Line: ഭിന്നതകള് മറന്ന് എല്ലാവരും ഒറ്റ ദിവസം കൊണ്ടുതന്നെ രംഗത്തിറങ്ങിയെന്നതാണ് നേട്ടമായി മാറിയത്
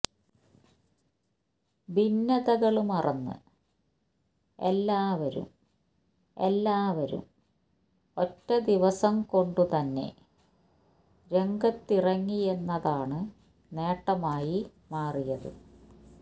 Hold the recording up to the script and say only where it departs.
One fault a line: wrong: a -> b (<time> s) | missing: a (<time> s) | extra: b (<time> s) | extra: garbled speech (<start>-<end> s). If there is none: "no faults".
extra: എല്ലാവരും (6.4 s)